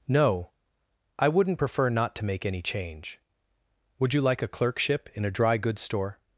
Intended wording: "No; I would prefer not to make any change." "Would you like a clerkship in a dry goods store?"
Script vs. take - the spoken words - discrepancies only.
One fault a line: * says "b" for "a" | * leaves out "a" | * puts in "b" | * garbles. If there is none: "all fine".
* says "wouldn't" for "would"